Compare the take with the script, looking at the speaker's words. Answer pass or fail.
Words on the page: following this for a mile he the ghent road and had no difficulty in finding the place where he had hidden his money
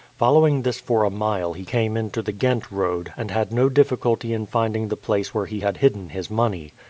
fail